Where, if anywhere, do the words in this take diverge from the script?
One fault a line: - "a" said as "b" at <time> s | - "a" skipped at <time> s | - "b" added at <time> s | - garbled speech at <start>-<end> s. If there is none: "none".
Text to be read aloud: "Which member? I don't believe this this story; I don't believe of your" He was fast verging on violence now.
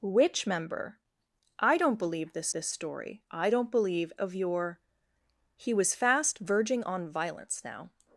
none